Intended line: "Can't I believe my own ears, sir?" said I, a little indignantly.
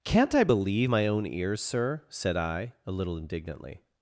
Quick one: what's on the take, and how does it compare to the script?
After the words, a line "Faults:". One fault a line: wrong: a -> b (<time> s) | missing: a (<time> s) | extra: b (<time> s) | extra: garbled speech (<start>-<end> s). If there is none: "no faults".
"Can't I believe my own ears, sir?" said I, a little indignantly.
Faults:
no faults